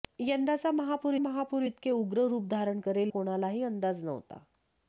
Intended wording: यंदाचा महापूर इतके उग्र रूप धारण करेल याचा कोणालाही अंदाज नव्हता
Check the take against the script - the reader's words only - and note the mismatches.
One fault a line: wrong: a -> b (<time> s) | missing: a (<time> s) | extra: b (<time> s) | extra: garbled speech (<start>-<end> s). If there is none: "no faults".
extra: महापूर (1.2 s)
missing: याचा (3.1 s)